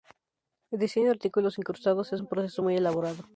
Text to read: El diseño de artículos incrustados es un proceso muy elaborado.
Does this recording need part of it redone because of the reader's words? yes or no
no